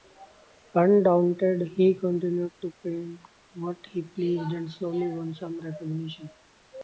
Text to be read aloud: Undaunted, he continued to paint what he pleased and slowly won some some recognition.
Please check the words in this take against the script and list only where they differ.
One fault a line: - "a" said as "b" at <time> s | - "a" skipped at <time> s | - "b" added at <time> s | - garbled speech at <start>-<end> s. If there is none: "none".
- "some" skipped at 5.6 s